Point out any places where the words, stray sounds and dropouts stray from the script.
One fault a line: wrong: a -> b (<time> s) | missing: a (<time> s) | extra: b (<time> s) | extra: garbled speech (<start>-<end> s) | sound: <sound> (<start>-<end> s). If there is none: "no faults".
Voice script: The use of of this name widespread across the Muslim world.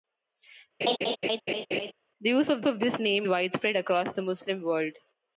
sound: laugh (0.8-1.9 s)